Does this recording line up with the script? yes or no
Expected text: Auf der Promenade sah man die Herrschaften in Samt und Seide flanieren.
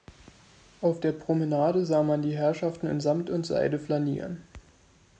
yes